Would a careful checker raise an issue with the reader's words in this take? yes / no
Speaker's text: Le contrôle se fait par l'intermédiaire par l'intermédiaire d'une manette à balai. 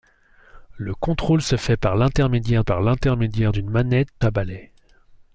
no